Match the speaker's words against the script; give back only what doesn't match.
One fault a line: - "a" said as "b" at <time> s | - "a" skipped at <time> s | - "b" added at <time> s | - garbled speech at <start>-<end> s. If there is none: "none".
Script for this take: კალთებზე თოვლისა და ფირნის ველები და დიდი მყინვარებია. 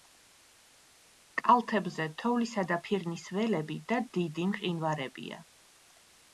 none